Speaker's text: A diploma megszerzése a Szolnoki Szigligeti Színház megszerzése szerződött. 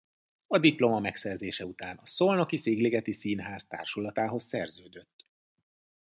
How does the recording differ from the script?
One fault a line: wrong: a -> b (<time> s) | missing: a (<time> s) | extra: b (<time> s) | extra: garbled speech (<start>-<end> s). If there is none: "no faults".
extra: után (1.6 s)
wrong: megszerzése -> társulatához (3.7 s)